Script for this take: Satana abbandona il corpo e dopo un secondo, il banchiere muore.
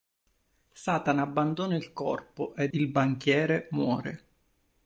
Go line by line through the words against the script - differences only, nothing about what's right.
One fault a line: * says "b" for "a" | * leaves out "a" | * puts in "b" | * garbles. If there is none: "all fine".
* leaves out "dopo un secondo"